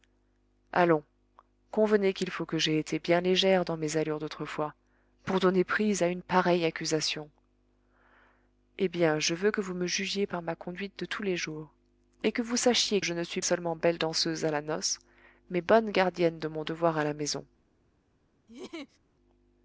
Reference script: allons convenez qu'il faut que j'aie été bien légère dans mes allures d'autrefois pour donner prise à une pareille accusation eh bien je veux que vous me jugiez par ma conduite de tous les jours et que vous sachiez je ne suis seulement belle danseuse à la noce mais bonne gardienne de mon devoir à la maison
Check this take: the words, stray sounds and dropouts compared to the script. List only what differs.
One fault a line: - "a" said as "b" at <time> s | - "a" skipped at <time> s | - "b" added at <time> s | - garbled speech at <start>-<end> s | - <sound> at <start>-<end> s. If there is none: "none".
- laugh at 18.5-19.0 s